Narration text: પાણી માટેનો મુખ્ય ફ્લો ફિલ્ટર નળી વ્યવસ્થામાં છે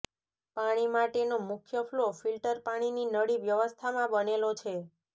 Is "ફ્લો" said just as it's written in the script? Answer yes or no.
yes